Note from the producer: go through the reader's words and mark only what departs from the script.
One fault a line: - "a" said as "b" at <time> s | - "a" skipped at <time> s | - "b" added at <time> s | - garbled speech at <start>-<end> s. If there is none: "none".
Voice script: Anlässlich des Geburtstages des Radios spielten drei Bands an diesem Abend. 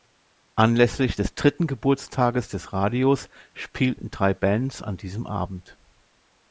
- "dritten" added at 1.3 s